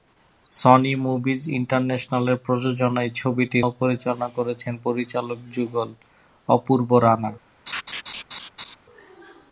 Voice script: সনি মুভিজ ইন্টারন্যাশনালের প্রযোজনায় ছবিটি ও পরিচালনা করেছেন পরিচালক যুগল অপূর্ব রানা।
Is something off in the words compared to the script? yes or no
no